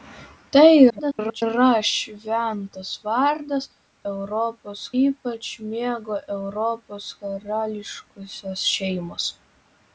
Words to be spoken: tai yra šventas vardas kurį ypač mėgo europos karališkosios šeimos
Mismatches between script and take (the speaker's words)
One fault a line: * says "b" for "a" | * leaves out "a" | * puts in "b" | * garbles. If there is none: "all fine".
* garbles
* says "europos" for "kurį"